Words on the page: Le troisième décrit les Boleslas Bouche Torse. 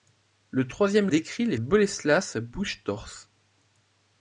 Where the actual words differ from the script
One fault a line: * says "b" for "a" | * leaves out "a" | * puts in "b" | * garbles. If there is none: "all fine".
all fine